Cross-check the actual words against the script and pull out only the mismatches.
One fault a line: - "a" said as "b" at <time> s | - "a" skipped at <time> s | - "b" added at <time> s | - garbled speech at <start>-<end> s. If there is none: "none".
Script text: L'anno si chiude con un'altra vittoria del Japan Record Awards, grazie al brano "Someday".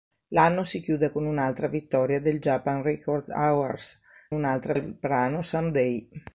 - "grazie" said as "un'altra" at 4.3 s